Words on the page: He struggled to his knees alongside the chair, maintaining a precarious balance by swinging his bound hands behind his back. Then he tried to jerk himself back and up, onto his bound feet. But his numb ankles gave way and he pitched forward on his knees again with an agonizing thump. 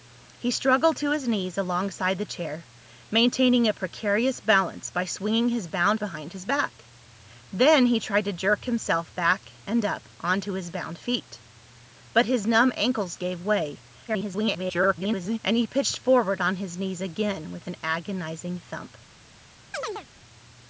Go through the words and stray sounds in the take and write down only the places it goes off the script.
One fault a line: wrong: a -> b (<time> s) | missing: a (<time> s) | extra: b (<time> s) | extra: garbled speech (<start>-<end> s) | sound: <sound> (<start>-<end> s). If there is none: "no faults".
missing: hands (6.0 s)
extra: garbled speech (14.1-15.4 s)
sound: chirp (19.7-20.1 s)